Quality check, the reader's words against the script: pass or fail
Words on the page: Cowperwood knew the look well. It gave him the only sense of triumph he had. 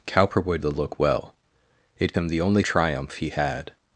fail